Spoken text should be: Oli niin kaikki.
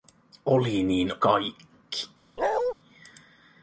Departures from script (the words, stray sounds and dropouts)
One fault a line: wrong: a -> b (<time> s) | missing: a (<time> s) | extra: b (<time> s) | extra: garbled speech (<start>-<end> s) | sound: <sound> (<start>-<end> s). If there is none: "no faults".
sound: bark (2.4-2.7 s)